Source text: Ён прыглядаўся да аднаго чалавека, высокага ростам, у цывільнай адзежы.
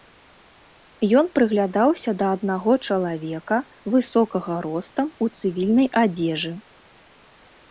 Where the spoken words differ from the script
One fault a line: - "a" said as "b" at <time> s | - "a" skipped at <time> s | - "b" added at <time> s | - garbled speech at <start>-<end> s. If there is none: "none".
none